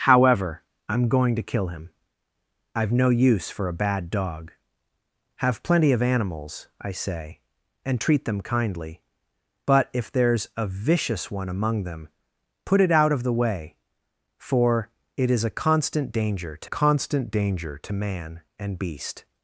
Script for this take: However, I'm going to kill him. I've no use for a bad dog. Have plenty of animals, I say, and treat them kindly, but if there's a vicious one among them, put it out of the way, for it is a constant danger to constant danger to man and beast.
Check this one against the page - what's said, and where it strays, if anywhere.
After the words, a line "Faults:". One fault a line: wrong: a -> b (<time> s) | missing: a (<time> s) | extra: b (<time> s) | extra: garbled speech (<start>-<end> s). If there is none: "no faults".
However, I'm going to kill him. I've no use for a bad dog. Have plenty of animals, I say, and treat them kindly, but if there's a vicious one among them, put it out of the way, for it is a constant danger to constant danger to man and beast.
Faults:
no faults